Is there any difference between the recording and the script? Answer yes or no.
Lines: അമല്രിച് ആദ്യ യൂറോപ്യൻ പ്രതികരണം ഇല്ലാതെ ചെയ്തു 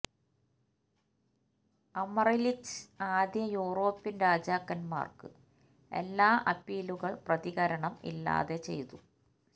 yes